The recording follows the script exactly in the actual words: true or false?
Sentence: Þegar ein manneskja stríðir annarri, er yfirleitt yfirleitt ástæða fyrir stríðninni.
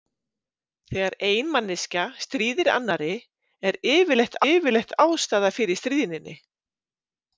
true